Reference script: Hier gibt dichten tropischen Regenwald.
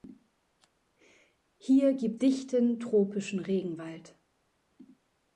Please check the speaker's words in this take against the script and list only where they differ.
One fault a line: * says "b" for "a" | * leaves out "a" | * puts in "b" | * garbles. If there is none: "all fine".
all fine